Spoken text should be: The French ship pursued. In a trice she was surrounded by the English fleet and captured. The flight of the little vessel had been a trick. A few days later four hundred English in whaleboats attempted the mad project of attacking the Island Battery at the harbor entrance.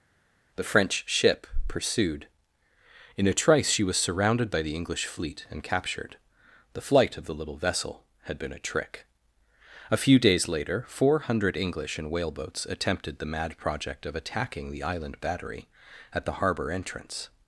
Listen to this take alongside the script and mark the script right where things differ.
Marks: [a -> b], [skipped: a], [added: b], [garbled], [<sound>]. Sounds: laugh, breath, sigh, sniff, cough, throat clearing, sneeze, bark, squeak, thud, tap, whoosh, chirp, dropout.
The French ship pursued. In a trice she was surrounded by the English fleet and captured. The flight of the little vessel had been a trick. A few days later four hundred English in whaleboats attempted the mad project of attacking the Island Battery at the harbor entrance.